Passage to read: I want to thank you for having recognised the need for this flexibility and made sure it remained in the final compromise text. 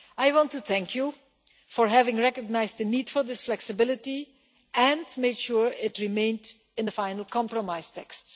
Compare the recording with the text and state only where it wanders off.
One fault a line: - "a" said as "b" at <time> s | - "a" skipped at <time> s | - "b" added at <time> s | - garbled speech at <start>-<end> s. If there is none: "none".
none